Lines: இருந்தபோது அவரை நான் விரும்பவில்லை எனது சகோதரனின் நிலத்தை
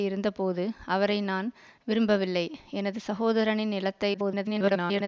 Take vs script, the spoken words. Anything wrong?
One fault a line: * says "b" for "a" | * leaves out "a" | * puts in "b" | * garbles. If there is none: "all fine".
* garbles